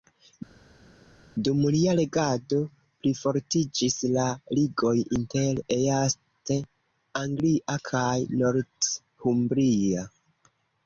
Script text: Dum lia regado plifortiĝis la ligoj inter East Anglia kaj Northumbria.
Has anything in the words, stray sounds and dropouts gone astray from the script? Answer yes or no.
no